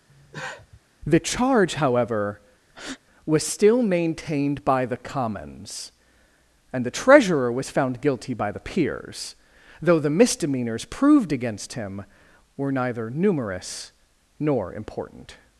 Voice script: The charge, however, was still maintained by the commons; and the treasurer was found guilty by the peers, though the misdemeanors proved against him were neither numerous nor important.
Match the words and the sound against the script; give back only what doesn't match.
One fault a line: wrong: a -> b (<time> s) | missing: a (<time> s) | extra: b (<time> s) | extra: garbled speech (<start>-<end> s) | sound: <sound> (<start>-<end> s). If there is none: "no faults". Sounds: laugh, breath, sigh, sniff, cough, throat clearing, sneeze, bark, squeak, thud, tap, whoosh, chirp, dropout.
sound: cough (0.1-0.8 s)
sound: breath (2.7-3.0 s)